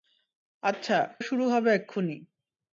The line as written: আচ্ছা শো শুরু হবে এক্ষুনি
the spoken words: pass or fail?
fail